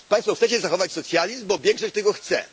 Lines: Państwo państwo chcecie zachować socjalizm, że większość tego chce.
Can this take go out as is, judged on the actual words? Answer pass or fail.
fail